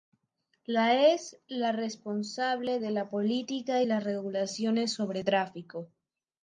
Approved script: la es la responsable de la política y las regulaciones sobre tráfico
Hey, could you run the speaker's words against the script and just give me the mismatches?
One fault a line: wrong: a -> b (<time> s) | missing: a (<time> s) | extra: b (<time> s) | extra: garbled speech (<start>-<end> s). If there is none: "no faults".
no faults